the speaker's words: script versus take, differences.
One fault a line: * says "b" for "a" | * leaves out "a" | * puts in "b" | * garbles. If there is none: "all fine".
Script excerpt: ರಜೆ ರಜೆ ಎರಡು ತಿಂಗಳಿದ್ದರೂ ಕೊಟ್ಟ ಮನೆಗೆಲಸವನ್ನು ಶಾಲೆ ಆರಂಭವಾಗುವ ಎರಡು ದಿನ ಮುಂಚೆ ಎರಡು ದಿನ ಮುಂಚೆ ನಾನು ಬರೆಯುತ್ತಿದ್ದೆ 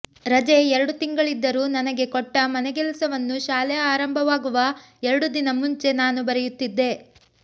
* leaves out "ರಜೆ"
* puts in "ನನಗೆ"
* leaves out "ಎರಡು ದಿನ ಮುಂಚೆ"